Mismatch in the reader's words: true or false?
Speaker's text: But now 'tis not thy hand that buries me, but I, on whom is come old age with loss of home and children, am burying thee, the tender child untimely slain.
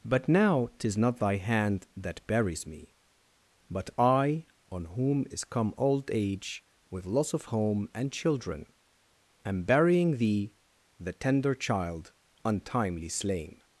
false